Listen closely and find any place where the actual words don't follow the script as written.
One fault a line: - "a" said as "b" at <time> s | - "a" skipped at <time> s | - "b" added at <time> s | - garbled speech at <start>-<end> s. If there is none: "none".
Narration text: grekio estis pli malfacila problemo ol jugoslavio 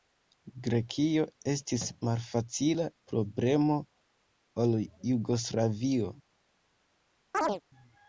- "pli" skipped at 1.8 s